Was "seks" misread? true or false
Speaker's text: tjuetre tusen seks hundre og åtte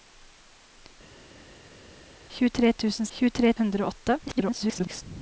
true